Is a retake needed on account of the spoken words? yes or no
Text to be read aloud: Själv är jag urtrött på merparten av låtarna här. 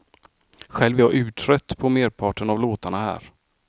no